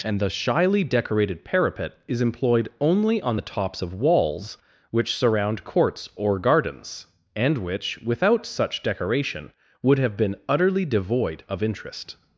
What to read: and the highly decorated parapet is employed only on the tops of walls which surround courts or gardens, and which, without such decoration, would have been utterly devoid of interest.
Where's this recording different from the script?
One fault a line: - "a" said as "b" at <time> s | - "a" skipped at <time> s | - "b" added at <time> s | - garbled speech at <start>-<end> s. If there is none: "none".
- "highly" said as "shyly" at 0.3 s